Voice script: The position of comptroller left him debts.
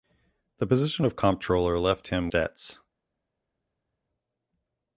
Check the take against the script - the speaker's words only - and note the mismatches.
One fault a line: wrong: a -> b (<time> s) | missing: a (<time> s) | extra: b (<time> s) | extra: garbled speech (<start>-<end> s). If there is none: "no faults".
no faults